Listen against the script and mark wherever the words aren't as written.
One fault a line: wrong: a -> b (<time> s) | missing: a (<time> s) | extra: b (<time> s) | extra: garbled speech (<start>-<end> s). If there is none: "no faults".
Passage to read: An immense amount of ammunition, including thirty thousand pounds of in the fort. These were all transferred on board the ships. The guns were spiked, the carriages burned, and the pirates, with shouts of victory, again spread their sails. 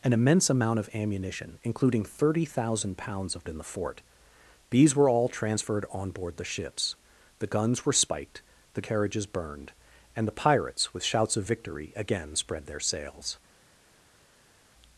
no faults